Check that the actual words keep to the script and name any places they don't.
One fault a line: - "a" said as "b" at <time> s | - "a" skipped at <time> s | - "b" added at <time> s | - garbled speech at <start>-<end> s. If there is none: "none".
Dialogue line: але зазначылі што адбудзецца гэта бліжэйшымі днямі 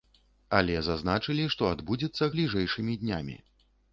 - "гэта" skipped at 2.3 s